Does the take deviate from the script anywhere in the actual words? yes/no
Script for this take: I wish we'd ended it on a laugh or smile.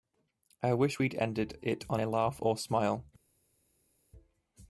no